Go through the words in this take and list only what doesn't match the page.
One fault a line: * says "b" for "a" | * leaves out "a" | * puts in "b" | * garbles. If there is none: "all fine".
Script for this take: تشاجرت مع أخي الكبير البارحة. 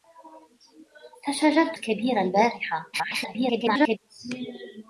* leaves out "مع أخي"
* garbles